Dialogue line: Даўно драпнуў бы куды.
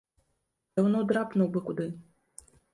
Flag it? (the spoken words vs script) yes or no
no